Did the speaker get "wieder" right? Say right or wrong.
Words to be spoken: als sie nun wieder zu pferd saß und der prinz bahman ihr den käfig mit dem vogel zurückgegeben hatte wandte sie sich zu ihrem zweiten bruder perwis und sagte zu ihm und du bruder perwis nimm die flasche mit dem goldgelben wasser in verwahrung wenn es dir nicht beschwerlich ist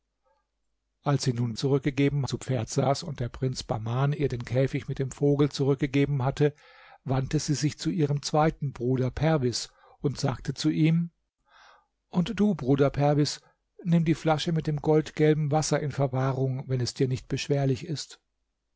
wrong